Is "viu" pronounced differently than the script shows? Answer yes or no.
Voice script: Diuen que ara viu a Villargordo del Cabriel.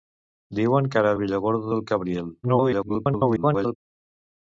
yes